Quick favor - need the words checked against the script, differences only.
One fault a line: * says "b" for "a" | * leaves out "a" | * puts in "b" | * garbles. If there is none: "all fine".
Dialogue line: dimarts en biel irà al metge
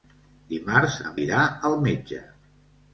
* leaves out "biel"